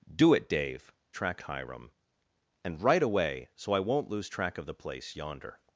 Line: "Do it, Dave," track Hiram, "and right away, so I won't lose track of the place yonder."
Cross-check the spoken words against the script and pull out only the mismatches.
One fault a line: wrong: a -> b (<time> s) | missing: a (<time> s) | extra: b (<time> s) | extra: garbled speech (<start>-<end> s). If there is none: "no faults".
no faults